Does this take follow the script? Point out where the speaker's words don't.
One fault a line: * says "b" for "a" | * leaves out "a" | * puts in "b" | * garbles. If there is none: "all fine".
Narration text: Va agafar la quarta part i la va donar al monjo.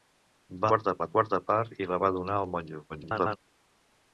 * says "quarta" for "agafar"
* garbles